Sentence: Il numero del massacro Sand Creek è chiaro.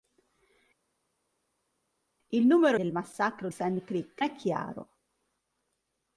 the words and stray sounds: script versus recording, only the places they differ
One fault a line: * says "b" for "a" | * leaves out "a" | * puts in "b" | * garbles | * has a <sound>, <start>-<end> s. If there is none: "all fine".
all fine